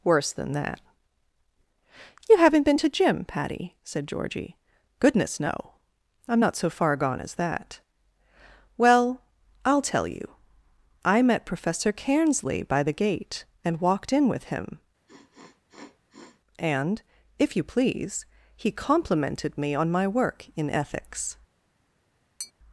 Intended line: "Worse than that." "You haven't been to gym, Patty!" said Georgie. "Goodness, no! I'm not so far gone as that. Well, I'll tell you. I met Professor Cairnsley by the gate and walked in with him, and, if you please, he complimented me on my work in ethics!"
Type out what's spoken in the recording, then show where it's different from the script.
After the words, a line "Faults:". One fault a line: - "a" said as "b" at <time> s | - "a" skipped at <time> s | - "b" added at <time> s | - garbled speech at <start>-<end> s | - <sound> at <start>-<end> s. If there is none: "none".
"Worse than that." "You haven't been to gym, Patty!" said Georgie. "Goodness, no! I'm not so far gone as that. Well, I'll tell you. I met Professor Cairnsley by the gate and walked in with him, and, if you please, he complimented me on my work in ethics!"
Faults:
- sniff at 15.1-16.4 s
- tap at 22.4-22.5 s